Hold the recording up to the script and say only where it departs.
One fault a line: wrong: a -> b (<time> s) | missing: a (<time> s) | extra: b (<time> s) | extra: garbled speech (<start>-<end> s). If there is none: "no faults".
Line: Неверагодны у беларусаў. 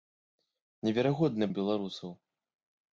no faults